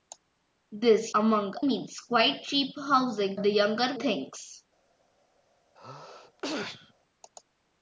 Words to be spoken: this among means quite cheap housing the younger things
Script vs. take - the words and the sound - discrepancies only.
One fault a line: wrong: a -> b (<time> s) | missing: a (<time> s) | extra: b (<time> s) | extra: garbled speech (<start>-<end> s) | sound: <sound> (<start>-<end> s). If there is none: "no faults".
sound: sneeze (5.8-6.9 s)